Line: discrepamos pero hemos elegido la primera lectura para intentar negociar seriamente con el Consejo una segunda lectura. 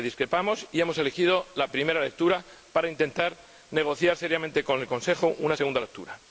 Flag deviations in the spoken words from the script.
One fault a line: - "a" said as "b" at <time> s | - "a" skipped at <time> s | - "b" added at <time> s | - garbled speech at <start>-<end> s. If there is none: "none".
- "pero" said as "y" at 0.7 s